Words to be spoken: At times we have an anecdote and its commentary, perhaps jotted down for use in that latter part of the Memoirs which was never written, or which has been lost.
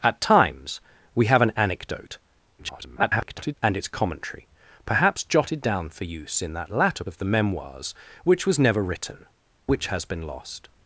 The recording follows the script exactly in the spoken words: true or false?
false